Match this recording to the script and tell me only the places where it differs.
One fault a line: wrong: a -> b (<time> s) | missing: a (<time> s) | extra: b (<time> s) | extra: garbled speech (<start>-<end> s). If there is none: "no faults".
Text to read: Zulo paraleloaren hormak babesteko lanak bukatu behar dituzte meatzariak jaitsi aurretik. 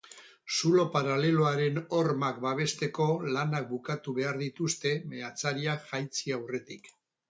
no faults